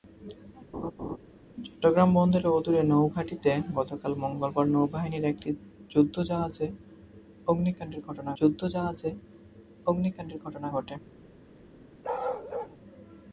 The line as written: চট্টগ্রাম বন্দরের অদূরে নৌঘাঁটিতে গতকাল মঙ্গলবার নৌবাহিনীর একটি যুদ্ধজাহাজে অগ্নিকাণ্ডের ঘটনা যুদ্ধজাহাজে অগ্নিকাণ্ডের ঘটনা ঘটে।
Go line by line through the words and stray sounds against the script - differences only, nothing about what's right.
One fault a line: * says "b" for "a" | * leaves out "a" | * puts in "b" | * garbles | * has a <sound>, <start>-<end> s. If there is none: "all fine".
* has a laugh, 0.7-1.2 s
* has a bark, 12.0-12.8 s